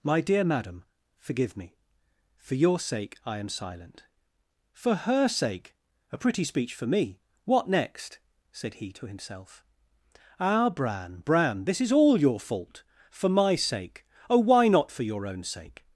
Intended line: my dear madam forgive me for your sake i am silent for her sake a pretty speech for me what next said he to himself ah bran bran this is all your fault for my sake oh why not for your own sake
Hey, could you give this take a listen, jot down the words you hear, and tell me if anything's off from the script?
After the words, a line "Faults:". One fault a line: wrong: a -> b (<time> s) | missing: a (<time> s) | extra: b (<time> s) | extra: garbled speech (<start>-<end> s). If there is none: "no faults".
my dear madam forgive me for your sake i am silent for her sake a pretty speech for me what next said he to himself ah bran bran this is all your fault for my sake oh why not for your own sake
Faults:
no faults